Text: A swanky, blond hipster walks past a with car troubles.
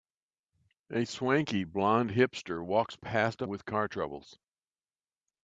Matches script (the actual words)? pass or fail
pass